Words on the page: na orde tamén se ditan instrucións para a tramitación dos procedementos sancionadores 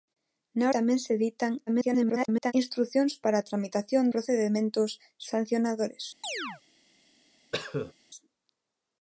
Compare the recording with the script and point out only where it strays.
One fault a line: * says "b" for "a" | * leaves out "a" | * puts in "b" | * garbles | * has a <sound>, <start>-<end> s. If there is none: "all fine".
* leaves out "orde"
* garbles
* leaves out "dos"
* has a chirp, 6.2-6.6 s
* has a cough, 7.5-7.9 s